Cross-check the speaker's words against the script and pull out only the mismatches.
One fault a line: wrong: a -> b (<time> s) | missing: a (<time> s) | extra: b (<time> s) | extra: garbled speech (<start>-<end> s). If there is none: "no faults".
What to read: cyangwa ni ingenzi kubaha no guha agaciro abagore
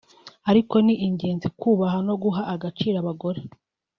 wrong: cyangwa -> ariko (0.5 s)